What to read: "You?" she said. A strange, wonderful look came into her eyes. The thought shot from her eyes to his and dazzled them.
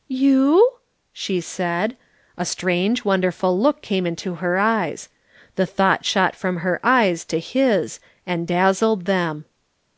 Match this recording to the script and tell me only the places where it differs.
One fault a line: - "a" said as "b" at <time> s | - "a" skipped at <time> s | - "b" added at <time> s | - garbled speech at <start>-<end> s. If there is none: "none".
none